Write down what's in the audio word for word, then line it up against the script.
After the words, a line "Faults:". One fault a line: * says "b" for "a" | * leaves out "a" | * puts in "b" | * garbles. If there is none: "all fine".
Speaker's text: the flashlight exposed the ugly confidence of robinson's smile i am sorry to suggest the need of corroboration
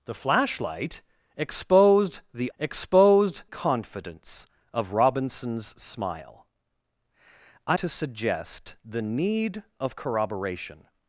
the flashlight exposed the exposed confidence of robinson's smile i to suggest the need of corroboration
Faults:
* says "exposed" for "ugly"
* leaves out "am sorry"